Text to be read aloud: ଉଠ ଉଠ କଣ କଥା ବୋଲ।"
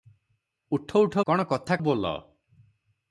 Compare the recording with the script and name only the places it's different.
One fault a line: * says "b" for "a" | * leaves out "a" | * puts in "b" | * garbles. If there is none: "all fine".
all fine